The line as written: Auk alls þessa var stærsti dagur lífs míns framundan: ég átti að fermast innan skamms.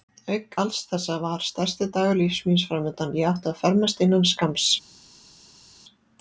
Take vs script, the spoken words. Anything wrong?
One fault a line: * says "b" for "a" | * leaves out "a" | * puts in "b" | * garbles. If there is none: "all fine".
all fine